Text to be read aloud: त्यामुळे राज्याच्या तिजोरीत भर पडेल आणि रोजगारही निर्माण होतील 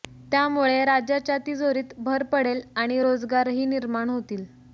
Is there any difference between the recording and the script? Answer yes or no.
no